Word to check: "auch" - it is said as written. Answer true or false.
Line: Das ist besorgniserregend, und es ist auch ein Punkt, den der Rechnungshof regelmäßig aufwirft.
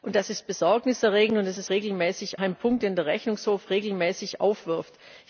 false